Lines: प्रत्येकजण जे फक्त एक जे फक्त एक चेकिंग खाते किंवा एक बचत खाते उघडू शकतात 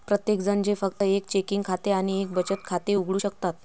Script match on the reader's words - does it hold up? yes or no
no